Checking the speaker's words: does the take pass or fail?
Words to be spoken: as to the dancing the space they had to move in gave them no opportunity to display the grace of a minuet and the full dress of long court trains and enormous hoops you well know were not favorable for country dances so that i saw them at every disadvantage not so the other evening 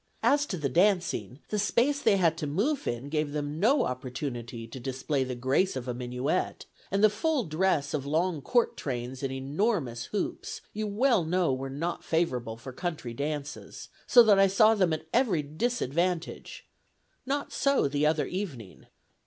pass